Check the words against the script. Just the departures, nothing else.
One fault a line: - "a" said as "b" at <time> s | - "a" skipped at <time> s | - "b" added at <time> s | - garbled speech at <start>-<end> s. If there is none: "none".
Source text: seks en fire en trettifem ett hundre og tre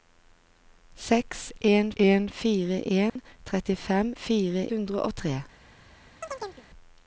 - "en" added at 2.0 s
- "ett" said as "fire" at 4.1 s